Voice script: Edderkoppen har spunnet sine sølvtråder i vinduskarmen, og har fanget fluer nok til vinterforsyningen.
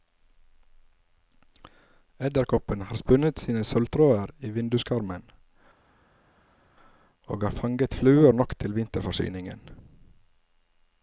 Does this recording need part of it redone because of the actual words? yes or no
no